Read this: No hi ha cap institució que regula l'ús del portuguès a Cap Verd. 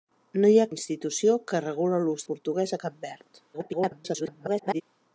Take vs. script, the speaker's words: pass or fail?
fail